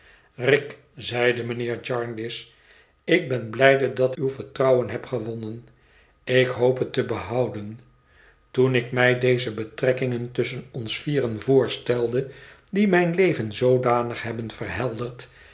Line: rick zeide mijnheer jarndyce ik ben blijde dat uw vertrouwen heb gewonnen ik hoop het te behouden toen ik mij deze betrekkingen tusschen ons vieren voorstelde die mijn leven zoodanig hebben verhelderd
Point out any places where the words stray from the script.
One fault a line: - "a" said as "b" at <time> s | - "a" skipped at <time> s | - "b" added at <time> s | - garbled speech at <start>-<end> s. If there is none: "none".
none